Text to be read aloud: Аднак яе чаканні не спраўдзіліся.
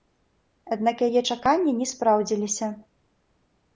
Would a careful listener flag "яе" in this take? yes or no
no